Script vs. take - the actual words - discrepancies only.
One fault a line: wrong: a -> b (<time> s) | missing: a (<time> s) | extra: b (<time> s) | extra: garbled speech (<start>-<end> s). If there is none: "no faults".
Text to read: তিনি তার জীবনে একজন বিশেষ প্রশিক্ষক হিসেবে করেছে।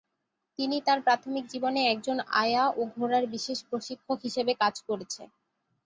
extra: প্রাথমিক (1.0 s)
extra: আয়া ও ঘোড়ার (2.4 s)
extra: কাজ (4.6 s)